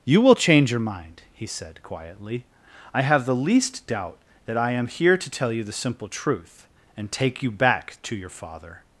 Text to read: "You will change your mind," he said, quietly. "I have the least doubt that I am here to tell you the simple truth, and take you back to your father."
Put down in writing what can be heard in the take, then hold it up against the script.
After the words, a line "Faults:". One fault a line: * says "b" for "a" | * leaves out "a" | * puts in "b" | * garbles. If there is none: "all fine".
"You will change your mind," he said, quietly. "I have the least doubt that I am here to tell you the simple truth, and take you back to your father."
Faults:
all fine